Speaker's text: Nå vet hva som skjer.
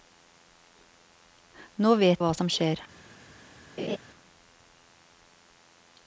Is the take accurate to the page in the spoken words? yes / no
yes